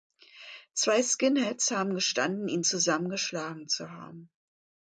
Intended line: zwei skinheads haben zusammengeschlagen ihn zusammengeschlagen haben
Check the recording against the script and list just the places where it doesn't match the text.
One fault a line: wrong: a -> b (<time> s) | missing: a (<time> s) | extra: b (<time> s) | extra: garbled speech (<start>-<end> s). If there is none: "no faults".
wrong: zusammengeschlagen -> gestanden (1.9 s)
extra: zu (3.7 s)